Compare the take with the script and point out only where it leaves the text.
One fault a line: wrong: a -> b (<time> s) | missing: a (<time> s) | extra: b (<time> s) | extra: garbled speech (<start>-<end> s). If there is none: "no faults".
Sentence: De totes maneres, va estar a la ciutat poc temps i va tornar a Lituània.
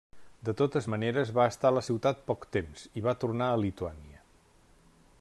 no faults